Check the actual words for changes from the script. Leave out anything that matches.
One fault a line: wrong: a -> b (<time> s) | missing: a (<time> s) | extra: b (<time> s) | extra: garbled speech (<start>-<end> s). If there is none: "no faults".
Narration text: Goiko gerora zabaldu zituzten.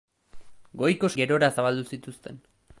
no faults